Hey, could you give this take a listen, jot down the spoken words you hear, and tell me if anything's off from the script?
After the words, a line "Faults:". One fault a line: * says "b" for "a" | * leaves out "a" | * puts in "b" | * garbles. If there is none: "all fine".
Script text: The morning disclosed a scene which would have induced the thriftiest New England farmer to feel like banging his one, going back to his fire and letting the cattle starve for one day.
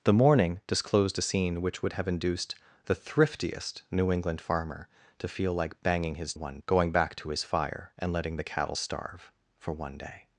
The morning disclosed a scene which would have induced the thriftiest New England farmer to feel like banging his one, going back to his fire and letting the cattle starve for one day.
Faults:
all fine